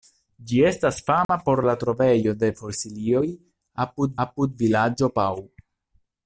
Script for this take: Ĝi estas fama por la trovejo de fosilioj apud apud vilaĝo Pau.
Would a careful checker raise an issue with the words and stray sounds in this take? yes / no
yes